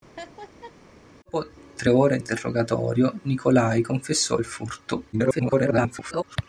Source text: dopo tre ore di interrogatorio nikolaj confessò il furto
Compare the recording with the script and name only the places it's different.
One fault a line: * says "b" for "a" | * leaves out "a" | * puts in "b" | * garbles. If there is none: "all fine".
* leaves out "di"
* garbles